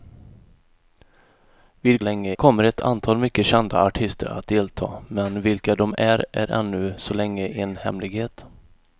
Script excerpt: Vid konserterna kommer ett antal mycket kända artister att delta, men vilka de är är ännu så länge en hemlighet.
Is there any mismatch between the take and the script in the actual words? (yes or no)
yes